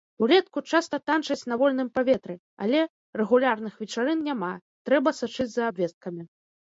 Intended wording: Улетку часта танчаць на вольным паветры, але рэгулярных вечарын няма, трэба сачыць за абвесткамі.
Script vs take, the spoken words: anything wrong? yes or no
no